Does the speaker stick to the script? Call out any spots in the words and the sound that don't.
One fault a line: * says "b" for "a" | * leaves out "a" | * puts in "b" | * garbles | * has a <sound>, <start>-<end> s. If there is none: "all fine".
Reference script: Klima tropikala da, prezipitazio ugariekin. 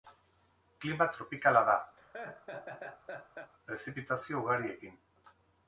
* has a laugh, 2.0-3.5 s